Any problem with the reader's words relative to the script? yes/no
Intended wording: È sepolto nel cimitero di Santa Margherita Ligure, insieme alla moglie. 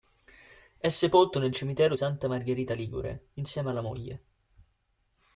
yes